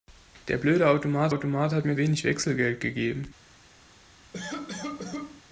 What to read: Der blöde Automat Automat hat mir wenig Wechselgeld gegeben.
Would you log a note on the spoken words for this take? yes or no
no